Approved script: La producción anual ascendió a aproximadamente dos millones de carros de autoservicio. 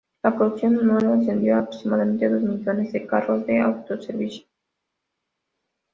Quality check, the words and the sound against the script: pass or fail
pass